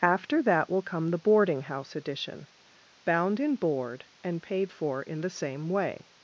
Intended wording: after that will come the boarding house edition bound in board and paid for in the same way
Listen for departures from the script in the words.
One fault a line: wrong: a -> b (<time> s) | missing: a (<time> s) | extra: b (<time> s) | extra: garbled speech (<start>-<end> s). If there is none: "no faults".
no faults